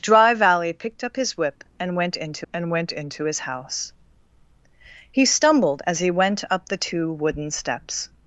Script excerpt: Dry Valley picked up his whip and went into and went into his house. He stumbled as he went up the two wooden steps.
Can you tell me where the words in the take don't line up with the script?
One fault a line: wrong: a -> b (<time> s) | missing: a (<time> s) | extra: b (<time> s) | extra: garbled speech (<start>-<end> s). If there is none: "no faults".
no faults